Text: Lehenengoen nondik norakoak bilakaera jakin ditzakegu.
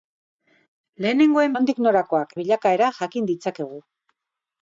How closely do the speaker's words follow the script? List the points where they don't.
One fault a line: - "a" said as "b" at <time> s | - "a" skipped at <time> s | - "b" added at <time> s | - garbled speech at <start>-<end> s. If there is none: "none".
none